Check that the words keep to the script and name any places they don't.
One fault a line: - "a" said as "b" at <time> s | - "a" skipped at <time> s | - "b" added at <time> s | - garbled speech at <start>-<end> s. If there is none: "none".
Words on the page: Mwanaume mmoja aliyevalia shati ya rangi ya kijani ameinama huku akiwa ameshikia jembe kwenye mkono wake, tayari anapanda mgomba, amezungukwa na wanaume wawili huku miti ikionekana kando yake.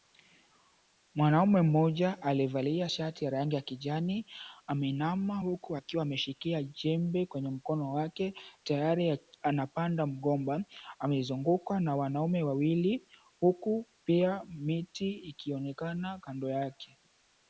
- "pia" added at 14.0 s